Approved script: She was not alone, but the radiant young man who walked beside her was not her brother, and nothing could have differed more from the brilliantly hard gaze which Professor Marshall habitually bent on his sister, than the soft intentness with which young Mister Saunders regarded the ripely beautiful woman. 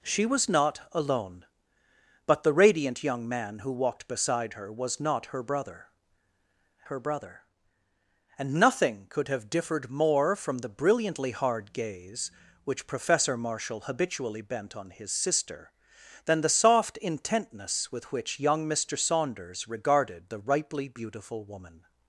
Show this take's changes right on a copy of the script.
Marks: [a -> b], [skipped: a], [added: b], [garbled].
She was not alone, but the radiant young man who walked beside her was not her brother, [added: her brother] and nothing could have differed more from the brilliantly hard gaze which Professor Marshall habitually bent on his sister, than the soft intentness with which young Mister Saunders regarded the ripely beautiful woman.